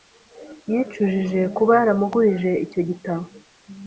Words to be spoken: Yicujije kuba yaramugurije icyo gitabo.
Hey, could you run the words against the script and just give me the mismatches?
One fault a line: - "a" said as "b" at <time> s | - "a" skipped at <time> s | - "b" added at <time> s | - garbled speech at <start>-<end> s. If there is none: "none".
none